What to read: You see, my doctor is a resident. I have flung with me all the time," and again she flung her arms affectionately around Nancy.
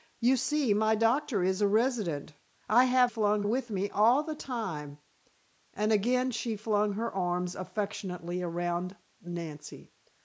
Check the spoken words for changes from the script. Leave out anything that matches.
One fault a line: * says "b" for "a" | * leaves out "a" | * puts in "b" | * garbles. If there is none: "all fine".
all fine